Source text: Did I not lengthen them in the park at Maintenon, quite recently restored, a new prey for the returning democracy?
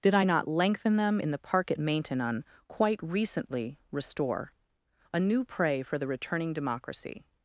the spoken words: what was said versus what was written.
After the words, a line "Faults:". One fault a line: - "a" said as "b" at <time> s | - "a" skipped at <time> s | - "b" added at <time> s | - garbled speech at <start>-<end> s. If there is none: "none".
Did I not lengthen them in the park at Maintenon, quite recently restore, a new prey for the returning democracy?
Faults:
- "restored" said as "restore" at 3.9 s